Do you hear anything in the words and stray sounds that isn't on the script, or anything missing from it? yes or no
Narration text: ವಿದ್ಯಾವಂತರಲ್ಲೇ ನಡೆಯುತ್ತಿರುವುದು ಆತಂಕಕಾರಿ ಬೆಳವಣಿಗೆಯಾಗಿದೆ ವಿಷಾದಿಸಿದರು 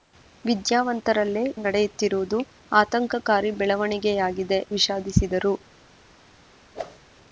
yes